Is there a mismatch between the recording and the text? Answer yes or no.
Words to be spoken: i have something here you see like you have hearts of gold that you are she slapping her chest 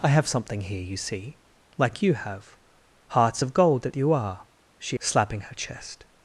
no